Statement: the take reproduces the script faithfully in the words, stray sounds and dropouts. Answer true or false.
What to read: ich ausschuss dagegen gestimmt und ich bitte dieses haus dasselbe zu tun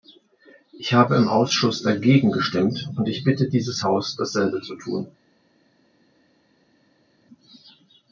false